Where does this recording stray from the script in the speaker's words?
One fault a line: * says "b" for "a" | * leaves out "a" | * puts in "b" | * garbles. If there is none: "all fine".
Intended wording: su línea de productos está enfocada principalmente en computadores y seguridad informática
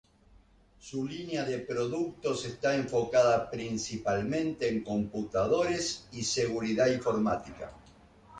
all fine